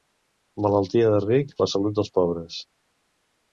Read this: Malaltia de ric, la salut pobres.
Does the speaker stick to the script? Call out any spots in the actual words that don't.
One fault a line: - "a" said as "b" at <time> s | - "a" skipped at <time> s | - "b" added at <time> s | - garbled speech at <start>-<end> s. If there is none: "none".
- "dels" added at 2.0 s